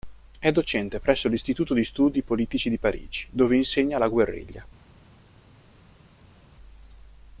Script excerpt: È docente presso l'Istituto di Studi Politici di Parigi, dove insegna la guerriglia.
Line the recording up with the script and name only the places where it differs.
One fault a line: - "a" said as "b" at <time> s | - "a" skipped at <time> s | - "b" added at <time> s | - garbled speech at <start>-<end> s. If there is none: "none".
none